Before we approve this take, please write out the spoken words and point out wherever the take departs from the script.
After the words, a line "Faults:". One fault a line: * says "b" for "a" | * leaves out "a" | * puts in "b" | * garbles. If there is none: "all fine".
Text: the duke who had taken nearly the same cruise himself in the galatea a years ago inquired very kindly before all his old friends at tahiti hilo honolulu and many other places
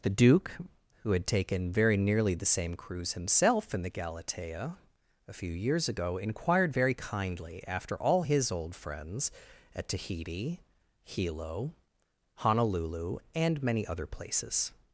the duke who had taken very nearly the same cruise himself in the galatea a few years ago inquired very kindly after all his old friends at tahiti hilo honolulu and many other places
Faults:
* puts in "very"
* puts in "few"
* says "after" for "before"